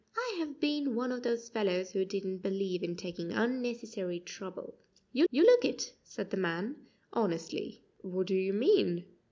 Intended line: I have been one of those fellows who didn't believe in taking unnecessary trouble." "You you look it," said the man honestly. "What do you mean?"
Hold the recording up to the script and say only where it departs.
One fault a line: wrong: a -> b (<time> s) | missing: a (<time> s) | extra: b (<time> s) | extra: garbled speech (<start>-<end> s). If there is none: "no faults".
no faults